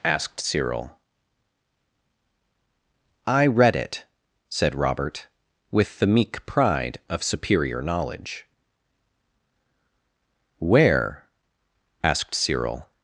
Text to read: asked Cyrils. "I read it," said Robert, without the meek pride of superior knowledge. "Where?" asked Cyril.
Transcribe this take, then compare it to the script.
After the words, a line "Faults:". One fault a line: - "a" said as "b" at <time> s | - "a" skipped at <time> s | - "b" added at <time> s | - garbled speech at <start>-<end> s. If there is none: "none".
asked Cyril. "I read it," said Robert, with the meek pride of superior knowledge. "Where?" asked Cyril.
Faults:
- "Cyrils" said as "Cyril" at 0.4 s
- "without" said as "with" at 5.7 s